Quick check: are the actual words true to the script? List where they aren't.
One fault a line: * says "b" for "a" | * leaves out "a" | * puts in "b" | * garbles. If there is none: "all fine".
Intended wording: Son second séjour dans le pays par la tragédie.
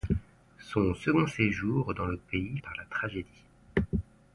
all fine